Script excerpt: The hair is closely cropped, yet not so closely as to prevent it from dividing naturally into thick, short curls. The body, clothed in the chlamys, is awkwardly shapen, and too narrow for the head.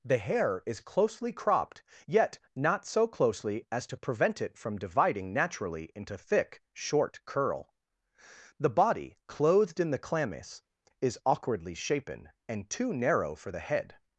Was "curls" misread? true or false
true